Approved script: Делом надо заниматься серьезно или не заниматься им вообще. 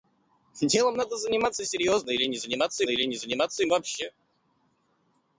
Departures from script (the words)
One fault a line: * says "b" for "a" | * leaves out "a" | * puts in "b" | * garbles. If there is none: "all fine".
* puts in "или не заниматься"